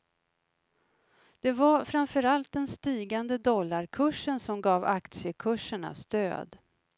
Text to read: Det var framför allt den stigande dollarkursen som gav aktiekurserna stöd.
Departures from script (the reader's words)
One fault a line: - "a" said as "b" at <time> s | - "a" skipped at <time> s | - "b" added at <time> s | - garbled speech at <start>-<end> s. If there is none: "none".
none